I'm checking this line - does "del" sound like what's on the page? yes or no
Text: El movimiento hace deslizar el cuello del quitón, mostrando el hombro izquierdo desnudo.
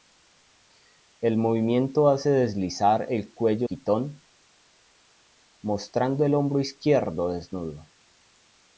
no